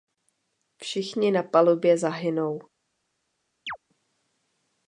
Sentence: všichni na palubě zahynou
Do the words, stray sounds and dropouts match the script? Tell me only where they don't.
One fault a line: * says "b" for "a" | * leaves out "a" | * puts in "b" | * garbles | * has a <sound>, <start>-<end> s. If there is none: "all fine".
* has a chirp, 3.7-3.8 s